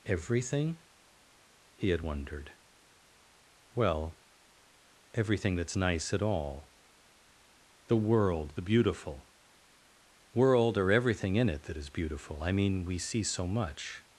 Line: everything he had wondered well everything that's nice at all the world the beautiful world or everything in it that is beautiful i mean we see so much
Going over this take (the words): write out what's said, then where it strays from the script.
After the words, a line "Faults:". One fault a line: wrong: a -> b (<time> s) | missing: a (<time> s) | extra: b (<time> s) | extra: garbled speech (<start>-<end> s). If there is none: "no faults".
everything he had wondered well everything that's nice at all the world the beautiful world or everything in it that is beautiful i mean we see so much
Faults:
no faults